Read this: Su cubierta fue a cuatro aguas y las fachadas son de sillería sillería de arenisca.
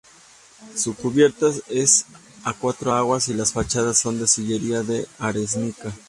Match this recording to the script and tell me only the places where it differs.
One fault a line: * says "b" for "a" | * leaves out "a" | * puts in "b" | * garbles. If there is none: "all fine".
* says "es" for "fue"
* leaves out "sillería"